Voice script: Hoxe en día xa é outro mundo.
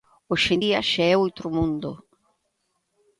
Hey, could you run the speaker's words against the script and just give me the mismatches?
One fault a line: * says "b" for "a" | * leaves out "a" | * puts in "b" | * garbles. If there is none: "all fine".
all fine